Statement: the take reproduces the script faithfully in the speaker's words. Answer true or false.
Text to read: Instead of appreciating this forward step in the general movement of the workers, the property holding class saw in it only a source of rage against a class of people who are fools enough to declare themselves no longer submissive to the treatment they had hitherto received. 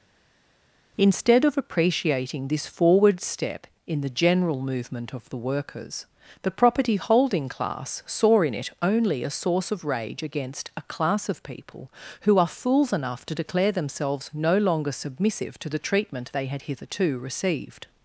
true